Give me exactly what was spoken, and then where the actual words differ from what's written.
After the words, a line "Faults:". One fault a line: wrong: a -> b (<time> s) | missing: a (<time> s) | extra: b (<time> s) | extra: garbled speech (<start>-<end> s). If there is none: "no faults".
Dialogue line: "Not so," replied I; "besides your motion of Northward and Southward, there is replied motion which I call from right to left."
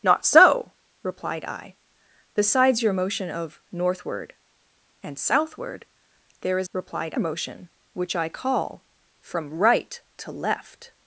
"Not so," replied I; "besides your motion of Northward and Southward, there is replied motion which I call from right to left."
Faults:
no faults